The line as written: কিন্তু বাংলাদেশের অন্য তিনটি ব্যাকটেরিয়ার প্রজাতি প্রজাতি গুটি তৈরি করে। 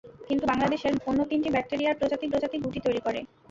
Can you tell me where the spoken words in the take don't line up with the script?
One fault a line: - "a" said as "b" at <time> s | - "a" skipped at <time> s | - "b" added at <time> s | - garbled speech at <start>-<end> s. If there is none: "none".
none